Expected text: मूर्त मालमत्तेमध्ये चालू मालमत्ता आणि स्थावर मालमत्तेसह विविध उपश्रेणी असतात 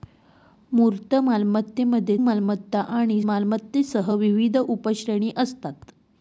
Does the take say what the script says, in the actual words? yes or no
no